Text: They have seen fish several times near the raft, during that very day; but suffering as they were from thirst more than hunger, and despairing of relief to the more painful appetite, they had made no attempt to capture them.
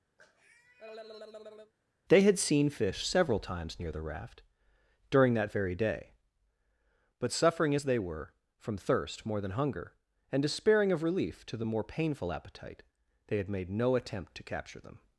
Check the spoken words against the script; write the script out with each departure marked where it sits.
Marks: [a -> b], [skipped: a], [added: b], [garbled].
They [have -> had] seen fish several times near the raft, during that very day; but suffering as they were from thirst more than hunger, and despairing of relief to the more painful appetite, they had made no attempt to capture them.